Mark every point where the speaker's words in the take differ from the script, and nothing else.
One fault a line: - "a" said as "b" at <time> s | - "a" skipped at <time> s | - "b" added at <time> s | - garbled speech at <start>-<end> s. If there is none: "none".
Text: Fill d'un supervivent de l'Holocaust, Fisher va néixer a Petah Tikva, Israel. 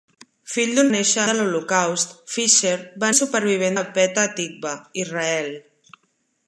- "supervivent" said as "néixer" at 1.0 s
- "néixer" said as "supervivent" at 3.2 s